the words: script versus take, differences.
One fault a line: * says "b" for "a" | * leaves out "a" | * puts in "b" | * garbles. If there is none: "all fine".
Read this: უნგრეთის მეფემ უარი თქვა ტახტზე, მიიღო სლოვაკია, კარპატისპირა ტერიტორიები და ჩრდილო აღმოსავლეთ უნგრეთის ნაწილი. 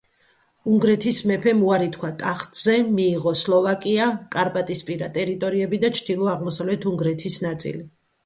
all fine